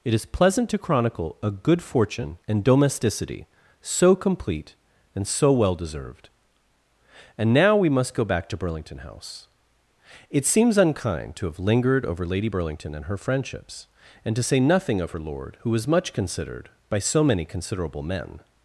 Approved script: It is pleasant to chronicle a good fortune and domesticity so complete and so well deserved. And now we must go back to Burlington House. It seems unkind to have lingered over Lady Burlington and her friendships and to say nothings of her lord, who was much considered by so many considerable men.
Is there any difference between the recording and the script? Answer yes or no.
yes